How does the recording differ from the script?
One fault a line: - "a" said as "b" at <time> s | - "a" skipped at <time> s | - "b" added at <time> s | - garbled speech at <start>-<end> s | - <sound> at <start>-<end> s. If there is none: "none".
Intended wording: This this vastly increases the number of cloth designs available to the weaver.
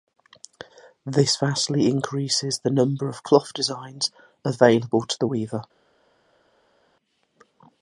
- "this" skipped at 1.4 s